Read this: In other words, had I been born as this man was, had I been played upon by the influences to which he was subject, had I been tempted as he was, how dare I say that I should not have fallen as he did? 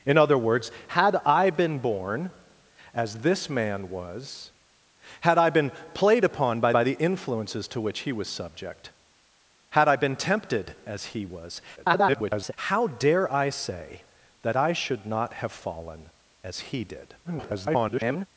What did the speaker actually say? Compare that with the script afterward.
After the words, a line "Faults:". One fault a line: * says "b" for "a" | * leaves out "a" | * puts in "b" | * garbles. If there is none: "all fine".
In other words, had I been born as this man was, had I been played upon by by the influences to which he was subject, had I been tempted as he was, [garbled] how dare I say that I should not have fallen as he did? [garbled]
Faults:
* puts in "by"
* garbles
* garbles